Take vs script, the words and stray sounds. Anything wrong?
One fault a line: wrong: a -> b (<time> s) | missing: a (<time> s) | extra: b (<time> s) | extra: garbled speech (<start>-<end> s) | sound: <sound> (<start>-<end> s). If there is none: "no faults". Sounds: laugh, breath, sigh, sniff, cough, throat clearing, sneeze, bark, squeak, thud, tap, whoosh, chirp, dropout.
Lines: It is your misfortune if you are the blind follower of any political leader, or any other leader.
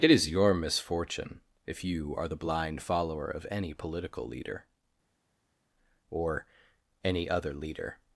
no faults